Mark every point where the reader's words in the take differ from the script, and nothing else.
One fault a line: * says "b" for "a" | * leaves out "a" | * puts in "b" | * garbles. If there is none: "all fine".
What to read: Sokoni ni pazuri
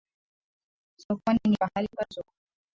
* puts in "pahali"